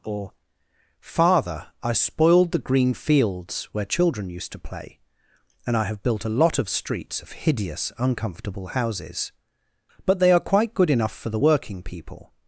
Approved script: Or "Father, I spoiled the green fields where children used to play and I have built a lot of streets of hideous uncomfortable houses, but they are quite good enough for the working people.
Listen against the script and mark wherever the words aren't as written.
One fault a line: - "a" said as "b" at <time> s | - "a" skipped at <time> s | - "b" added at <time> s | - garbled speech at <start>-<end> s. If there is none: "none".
none